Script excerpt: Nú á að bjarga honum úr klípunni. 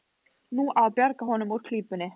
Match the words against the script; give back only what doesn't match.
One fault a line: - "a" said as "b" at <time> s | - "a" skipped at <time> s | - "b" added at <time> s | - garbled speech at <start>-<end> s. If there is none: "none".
none